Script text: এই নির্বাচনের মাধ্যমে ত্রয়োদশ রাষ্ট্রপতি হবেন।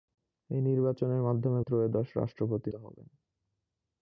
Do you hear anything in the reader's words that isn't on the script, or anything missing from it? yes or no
no